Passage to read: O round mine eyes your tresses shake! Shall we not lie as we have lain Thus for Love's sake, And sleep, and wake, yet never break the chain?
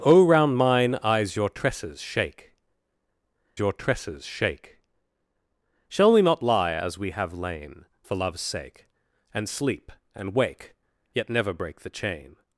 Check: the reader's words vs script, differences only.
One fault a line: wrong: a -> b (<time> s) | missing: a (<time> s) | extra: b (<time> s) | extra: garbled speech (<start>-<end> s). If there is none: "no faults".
extra: your tresses shake (3.6 s)
missing: Thus (7.9 s)